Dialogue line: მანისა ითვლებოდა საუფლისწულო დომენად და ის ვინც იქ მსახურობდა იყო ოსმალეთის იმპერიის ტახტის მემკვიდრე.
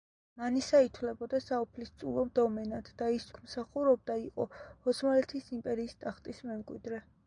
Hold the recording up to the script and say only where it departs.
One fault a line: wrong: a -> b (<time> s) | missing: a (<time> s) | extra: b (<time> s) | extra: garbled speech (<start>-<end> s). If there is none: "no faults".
missing: ვინც (3.3 s)